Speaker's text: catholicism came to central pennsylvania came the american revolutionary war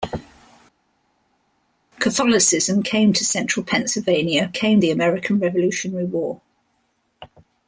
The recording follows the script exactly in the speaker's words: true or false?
true